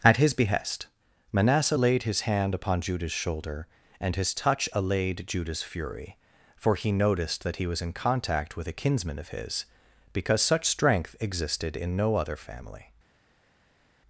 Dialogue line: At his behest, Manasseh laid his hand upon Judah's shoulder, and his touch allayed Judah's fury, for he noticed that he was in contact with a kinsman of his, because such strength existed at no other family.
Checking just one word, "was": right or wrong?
right